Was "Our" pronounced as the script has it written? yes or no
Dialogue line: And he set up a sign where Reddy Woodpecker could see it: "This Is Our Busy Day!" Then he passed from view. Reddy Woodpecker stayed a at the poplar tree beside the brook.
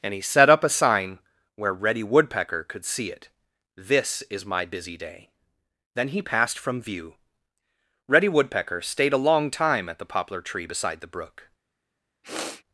no